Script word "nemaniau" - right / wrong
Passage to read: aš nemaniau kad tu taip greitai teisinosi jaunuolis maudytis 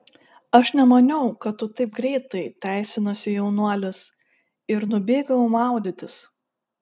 right